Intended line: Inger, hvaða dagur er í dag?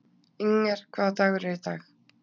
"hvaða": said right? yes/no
yes